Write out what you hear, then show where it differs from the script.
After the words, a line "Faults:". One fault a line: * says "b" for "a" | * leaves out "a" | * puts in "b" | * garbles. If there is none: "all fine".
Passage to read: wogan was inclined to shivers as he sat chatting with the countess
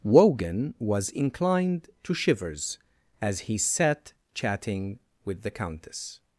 wogan was inclined to shivers as he sat chatting with the countess
Faults:
all fine